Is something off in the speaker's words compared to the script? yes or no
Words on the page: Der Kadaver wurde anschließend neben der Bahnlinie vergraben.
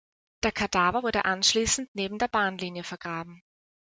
no